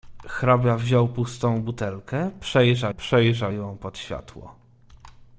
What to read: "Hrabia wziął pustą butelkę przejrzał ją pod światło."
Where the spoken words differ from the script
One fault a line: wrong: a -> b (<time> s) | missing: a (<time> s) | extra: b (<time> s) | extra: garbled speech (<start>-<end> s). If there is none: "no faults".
extra: przejrzał (3.0 s)